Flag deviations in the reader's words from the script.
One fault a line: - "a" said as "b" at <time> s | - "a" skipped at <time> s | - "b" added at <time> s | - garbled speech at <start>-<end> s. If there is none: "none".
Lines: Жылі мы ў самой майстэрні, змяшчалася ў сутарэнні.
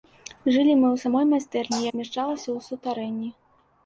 none